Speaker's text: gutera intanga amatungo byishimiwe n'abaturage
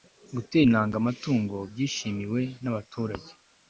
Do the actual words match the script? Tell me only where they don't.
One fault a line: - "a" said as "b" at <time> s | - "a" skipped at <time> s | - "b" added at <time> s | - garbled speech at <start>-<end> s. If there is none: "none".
none